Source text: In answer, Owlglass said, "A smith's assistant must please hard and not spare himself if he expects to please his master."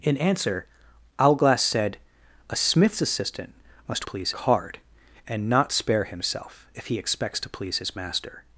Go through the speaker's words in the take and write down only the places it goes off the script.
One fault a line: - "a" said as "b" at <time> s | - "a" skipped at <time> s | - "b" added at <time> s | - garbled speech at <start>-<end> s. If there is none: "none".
none